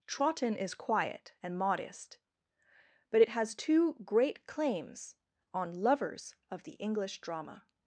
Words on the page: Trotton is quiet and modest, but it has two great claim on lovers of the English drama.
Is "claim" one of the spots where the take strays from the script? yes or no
yes